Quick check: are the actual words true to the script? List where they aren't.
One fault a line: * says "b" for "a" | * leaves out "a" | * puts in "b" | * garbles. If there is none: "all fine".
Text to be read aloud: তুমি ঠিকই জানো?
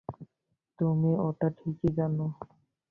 * puts in "ওটা"